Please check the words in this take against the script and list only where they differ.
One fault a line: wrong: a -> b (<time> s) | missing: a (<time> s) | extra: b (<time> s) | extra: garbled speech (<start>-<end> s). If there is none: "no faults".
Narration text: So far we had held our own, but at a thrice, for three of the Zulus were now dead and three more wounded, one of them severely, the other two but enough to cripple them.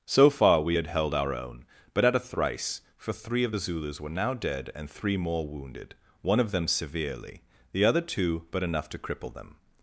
no faults